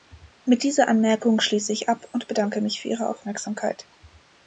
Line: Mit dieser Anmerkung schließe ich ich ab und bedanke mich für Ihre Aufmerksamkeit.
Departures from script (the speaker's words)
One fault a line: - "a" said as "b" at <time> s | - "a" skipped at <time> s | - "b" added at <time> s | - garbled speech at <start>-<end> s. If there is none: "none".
- "ich" skipped at 1.9 s